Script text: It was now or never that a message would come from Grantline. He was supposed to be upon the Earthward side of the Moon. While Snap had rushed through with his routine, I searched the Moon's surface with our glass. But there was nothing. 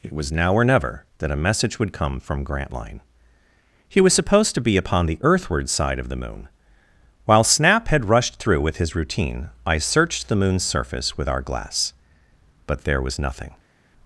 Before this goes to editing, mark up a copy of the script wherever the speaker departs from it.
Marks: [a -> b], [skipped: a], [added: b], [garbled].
It was now or never that a message would come from Grantline. He was supposed to be upon the Earthward side of the Moon. While Snap had rushed through with his routine, I searched the Moon's surface with our glass. But there was nothing.